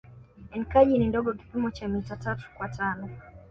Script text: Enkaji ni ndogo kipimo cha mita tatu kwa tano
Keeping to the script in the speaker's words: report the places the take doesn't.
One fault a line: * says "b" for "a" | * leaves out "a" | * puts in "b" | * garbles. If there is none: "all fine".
all fine